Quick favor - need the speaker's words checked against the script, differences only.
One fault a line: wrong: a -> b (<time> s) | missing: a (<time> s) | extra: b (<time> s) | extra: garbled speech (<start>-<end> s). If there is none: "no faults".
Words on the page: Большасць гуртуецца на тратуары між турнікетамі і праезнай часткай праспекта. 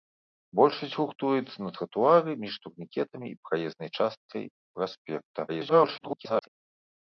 extra: garbled speech (5.5-6.5 s)